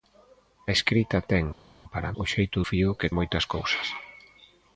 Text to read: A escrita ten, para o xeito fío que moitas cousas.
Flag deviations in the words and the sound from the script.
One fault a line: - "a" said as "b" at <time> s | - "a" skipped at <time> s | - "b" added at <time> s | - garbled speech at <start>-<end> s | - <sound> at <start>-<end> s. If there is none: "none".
none